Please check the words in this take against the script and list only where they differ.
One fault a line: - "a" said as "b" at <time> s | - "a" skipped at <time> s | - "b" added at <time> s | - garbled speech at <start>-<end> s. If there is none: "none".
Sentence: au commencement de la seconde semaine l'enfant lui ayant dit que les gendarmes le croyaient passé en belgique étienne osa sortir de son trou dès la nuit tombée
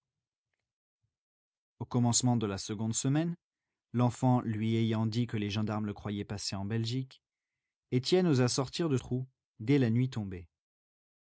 - "son" skipped at 9.0 s